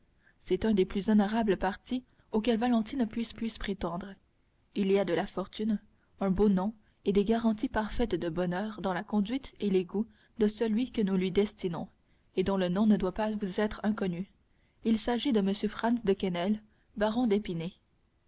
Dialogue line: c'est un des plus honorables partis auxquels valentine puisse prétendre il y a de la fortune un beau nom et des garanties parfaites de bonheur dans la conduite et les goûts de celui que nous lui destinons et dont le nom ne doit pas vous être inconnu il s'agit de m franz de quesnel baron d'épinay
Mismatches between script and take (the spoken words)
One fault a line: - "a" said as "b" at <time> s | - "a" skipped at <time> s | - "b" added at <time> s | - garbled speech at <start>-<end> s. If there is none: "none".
- "puisse" added at 3.3 s